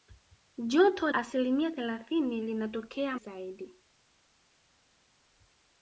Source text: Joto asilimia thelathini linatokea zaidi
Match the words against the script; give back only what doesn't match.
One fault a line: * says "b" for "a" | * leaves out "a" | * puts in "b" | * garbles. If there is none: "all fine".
all fine